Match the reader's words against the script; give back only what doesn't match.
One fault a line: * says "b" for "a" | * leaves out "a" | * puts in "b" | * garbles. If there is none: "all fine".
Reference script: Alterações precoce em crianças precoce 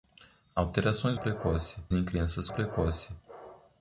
all fine